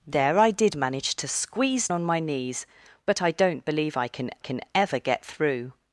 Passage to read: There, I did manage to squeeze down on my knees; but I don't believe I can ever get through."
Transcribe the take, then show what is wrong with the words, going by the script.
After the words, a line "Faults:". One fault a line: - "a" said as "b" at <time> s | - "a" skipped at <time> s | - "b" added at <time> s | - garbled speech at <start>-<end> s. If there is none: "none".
There, I did manage to squeeze on my knees; but I don't believe I can can ever get through."
Faults:
- "down" skipped at 1.9 s
- "can" added at 4.4 s